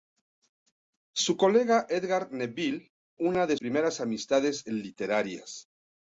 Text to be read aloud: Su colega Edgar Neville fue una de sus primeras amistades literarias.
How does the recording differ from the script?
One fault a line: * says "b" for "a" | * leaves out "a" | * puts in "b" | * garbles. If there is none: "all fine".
* leaves out "fue"
* leaves out "sus"